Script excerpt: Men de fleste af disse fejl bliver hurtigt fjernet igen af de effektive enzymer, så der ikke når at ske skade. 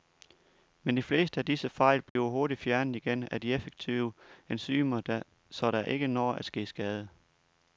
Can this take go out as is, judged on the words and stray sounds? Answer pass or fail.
fail